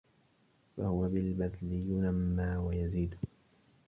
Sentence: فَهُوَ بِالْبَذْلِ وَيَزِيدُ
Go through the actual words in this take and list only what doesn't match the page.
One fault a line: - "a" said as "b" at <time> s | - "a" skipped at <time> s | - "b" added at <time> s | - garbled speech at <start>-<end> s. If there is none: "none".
- "يُنَمَّى" added at 1.7 s